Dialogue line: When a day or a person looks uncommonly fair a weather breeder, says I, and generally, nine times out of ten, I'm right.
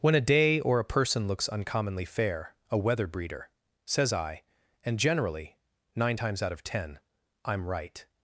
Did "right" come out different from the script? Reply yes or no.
no